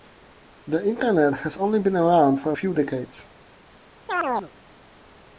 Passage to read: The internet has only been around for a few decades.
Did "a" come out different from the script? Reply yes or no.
no